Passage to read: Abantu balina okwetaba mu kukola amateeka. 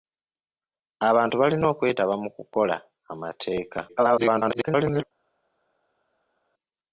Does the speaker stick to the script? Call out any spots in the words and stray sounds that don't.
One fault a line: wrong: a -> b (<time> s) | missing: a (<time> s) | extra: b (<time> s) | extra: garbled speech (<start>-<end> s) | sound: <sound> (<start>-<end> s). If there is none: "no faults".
extra: garbled speech (3.9-5.0 s)